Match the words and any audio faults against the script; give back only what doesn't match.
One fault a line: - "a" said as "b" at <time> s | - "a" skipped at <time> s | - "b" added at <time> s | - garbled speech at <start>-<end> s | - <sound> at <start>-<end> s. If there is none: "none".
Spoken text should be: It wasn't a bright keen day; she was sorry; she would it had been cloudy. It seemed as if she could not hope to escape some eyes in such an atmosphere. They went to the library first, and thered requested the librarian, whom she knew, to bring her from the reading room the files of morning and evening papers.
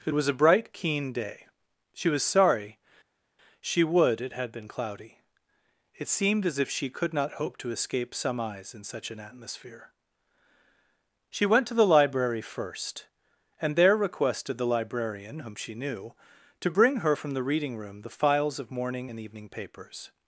- "wasn't" said as "was" at 0.1 s
- "They" said as "She" at 11.3 s
- "thered" said as "there" at 13.8 s